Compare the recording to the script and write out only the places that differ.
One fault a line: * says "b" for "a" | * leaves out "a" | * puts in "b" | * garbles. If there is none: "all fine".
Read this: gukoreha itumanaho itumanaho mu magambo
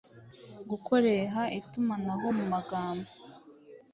* leaves out "itumanaho"